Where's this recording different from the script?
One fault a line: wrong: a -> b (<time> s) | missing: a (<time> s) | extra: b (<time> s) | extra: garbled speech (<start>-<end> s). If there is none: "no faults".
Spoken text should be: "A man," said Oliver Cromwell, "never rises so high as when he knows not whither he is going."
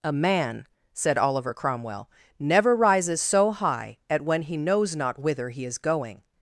wrong: as -> at (4.1 s)